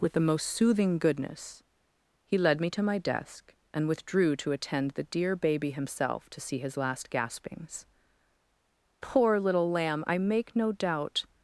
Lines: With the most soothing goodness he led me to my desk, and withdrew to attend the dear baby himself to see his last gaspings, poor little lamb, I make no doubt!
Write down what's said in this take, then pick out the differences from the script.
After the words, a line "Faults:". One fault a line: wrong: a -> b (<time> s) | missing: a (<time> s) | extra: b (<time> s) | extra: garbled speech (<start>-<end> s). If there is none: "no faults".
With the most soothing goodness he led me to my desk, and withdrew to attend the dear baby himself to see his last gaspings, poor little lamb, I make no doubt!
Faults:
no faults